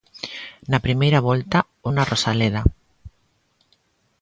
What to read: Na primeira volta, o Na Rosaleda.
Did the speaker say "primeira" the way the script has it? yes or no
yes